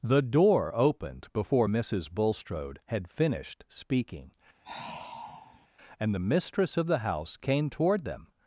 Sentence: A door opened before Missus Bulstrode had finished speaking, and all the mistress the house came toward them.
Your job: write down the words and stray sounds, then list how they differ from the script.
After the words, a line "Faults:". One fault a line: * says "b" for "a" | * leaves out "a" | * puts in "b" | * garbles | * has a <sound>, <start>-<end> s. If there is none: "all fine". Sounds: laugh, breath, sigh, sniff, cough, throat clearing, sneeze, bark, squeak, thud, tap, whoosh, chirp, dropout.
The door opened before Missus Bulstrode had finished speaking, and the mistress of the house came toward them.
Faults:
* says "The" for "A"
* has a sigh, 4.6-5.7 s
* leaves out "all"
* puts in "of"